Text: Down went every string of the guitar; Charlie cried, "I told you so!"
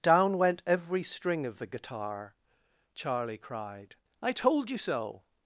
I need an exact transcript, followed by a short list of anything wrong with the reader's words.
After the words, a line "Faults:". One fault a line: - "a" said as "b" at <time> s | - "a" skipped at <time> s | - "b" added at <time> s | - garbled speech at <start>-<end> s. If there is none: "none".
Down went every string of the guitar; Charlie cried, "I told you so!"
Faults:
none